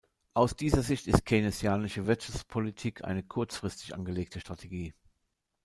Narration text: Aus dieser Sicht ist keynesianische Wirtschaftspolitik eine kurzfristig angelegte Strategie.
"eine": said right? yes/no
yes